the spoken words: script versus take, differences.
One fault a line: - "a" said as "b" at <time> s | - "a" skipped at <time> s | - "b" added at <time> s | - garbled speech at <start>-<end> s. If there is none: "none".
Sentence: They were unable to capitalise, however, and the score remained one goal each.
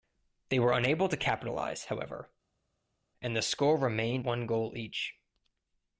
none